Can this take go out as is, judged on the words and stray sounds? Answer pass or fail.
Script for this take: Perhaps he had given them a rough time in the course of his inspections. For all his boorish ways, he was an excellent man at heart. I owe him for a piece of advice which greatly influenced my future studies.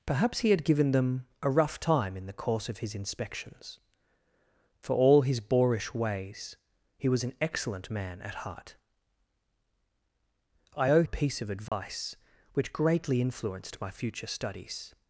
fail